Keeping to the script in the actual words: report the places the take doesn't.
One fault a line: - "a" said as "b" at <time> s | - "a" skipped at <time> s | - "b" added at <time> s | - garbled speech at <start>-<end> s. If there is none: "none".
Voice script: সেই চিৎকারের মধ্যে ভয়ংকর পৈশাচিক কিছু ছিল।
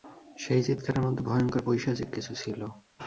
none